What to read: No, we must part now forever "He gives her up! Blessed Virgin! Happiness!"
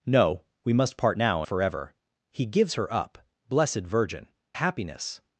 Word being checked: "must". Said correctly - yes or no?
yes